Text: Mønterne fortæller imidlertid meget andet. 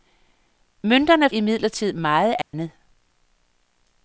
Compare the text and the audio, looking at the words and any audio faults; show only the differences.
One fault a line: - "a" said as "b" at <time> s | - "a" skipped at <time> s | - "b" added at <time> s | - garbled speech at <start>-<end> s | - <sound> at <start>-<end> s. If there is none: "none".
- "fortæller" skipped at 1.3 s
- dropout at 2.4-2.5 s